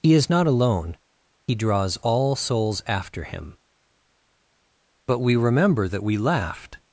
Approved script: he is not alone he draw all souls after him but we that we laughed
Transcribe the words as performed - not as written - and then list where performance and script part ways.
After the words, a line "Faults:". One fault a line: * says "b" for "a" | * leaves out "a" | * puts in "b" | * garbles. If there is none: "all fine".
he is not alone he draws all souls after him but we remember that we laughed
Faults:
* says "draws" for "draw"
* puts in "remember"